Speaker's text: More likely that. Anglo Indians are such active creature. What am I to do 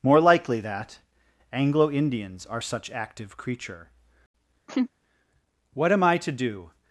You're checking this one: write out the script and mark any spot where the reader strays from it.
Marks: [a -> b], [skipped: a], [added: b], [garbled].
More likely that. Anglo Indians are such active creature. What am I to do